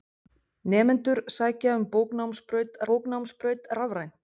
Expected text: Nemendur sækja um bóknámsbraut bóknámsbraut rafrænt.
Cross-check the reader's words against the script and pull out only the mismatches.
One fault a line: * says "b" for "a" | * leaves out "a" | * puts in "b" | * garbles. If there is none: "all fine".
all fine